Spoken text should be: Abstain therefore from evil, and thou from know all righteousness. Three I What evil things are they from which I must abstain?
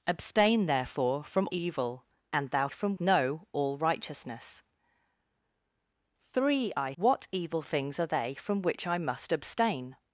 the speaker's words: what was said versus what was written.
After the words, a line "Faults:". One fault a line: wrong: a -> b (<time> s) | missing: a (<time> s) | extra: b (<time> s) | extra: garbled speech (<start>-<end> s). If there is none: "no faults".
Abstain therefore from evil, and thou from know all righteousness. Three I What evil things are they from which I must abstain?
Faults:
no faults